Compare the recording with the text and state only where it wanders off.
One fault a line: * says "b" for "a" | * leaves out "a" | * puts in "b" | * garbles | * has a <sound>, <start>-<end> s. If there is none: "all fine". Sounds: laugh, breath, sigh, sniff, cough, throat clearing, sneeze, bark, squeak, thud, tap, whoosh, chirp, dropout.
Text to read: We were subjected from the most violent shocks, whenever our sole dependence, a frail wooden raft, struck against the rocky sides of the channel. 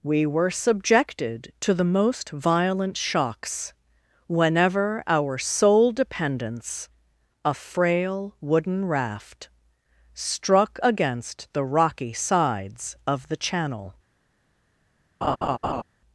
* says "to" for "from"
* has a laugh, 15.2-15.8 s